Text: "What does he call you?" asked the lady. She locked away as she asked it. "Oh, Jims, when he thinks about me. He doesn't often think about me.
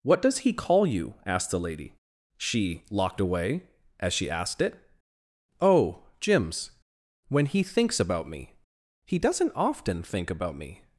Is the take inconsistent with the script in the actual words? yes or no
no